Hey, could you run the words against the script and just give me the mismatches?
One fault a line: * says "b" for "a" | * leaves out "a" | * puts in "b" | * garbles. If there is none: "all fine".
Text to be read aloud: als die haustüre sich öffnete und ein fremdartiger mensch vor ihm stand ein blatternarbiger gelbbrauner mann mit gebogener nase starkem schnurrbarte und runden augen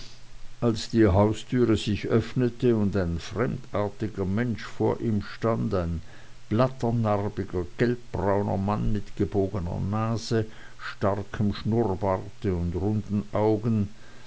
all fine